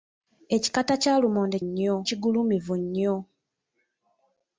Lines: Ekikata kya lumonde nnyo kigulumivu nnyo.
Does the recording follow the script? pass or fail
pass